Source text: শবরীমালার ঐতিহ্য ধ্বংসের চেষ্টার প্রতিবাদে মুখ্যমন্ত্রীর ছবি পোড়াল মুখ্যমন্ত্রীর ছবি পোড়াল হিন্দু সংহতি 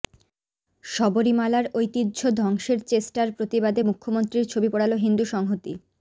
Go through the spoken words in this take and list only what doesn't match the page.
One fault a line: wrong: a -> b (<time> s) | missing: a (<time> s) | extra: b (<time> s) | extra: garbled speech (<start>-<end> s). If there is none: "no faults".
missing: মুখ্যমন্ত্রীর ছবি পোড়াল (4.9 s)